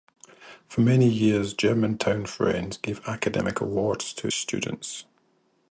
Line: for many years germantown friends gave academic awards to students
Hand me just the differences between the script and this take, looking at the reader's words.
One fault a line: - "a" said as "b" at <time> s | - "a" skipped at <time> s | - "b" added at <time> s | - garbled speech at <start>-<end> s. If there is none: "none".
none